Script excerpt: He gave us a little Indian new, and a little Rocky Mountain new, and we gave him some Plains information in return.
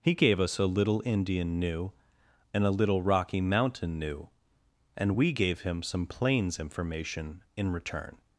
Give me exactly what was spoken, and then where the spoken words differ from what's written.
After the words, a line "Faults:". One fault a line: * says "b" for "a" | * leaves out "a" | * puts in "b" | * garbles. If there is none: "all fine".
He gave us a little Indian new, and a little Rocky Mountain new, and we gave him some Plains information in return.
Faults:
all fine